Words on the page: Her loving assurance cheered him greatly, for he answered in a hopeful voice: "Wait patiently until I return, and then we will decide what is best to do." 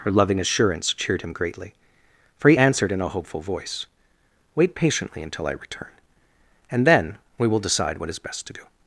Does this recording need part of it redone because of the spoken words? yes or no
no